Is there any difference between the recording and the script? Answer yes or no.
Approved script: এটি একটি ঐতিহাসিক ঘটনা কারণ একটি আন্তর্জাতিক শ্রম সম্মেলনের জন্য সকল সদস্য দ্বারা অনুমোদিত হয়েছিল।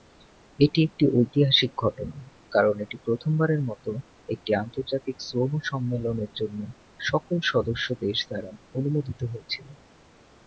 yes